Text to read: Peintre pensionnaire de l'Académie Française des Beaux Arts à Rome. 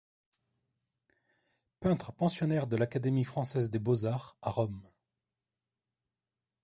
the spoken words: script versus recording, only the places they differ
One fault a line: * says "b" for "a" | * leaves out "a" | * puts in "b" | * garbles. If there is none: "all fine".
all fine